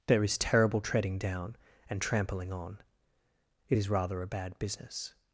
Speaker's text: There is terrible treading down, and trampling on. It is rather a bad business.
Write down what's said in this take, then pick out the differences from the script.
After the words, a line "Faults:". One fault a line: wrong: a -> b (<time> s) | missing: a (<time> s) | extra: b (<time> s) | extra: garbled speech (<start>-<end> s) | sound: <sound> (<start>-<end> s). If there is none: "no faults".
There is terrible treading down, and trampling on. It is rather a bad business.
Faults:
no faults